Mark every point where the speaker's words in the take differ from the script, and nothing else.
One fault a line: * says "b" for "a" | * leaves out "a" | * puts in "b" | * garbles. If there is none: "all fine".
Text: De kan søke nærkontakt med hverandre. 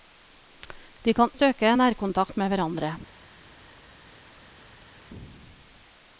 all fine